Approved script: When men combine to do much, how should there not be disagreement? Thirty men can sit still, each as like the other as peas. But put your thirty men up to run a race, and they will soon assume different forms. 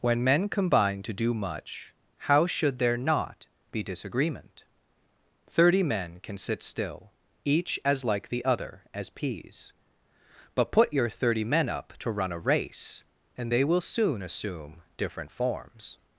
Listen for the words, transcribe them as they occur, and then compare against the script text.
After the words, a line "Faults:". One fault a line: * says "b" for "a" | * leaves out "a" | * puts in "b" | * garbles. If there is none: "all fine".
When men combine to do much, how should there not be disagreement? Thirty men can sit still, each as like the other as peas. But put your thirty men up to run a race, and they will soon assume different forms.
Faults:
all fine